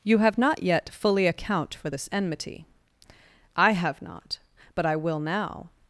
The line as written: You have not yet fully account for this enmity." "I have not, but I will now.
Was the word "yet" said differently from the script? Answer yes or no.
no